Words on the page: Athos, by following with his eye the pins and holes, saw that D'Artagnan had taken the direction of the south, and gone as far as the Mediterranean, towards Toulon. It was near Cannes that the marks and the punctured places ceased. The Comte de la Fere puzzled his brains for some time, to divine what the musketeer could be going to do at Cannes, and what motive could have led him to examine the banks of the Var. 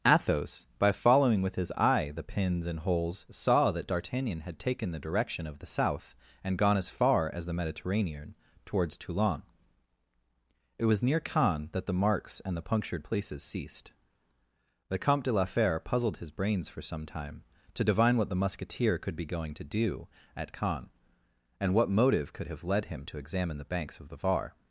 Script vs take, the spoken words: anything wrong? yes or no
no